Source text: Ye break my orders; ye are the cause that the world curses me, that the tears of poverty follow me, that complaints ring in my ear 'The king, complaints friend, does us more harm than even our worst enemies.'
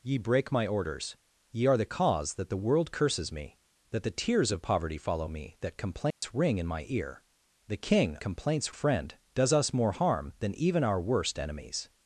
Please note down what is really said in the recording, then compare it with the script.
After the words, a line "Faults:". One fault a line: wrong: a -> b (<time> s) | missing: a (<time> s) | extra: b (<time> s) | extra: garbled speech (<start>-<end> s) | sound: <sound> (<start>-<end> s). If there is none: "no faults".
Ye break my orders; ye are the cause that the world curses me, that the tears of poverty follow me, that complaints ring in my ear 'The king, complaints friend, does us more harm than even our worst enemies.'
Faults:
sound: dropout (6.1-6.2 s)